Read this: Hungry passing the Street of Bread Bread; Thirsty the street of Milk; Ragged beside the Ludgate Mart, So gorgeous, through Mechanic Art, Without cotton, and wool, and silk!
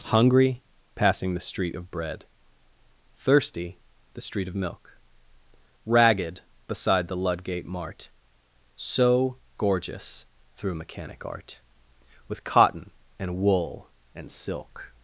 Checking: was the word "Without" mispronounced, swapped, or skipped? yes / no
yes